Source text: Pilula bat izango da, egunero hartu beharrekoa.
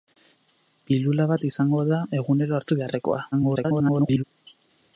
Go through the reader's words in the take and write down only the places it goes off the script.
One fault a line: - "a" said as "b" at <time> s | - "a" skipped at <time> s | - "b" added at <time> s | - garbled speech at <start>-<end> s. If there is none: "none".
- garbled speech at 3.3-4.2 s